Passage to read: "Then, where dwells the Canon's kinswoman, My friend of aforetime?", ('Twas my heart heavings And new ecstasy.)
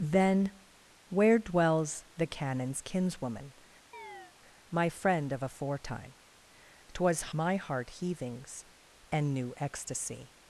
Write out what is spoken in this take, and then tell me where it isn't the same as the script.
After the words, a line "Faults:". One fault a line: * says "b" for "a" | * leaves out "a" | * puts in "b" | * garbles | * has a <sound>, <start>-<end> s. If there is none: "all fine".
"Then, where dwells the Canon's kinswoman, My friend of aforetime?", ('Twas my heart heavings And new ecstasy.)
Faults:
* has a chirp, 3.9-4.3 s